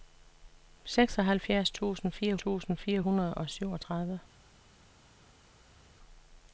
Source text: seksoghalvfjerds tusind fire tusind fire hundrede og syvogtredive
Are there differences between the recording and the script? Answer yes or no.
no